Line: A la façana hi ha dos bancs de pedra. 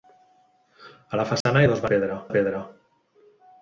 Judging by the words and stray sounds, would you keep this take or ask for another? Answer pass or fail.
fail